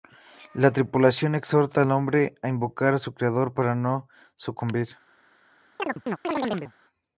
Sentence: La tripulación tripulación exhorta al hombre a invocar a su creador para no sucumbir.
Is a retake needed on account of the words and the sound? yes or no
yes